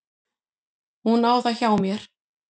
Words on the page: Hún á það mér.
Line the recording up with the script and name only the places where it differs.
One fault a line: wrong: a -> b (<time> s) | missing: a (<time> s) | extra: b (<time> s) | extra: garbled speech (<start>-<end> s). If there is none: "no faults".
extra: hjá (1.6 s)